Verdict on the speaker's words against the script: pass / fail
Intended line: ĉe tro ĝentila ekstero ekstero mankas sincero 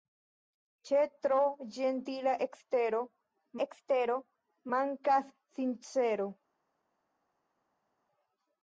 pass